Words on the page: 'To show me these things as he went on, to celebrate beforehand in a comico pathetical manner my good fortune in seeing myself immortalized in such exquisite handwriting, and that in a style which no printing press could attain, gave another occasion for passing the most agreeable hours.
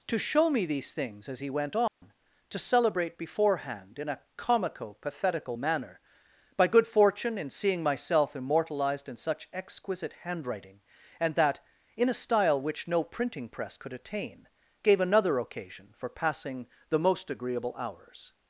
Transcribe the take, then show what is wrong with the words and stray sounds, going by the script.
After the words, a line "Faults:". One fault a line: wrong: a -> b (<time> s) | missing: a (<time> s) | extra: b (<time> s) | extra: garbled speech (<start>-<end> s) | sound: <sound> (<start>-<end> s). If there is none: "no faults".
'To show me these things as he went on, to celebrate beforehand in a comico pathetical manner by good fortune in seeing myself immortalized in such exquisite handwriting, and that in a style which no printing press could attain, gave another occasion for passing the most agreeable hours.
Faults:
sound: dropout (1.9-2.0 s)
wrong: my -> by (6.6 s)